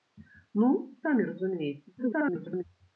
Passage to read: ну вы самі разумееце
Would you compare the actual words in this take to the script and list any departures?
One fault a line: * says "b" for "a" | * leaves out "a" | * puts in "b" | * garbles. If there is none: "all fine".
* leaves out "вы"
* garbles